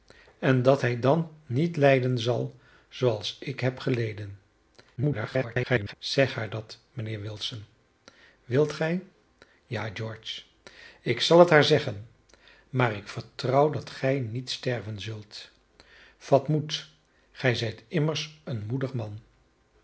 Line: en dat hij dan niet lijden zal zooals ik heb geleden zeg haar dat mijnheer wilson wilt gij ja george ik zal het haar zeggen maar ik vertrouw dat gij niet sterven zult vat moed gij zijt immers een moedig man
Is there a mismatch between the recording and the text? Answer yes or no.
yes